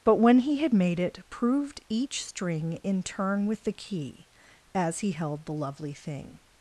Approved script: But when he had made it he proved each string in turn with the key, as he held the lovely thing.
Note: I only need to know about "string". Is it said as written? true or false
true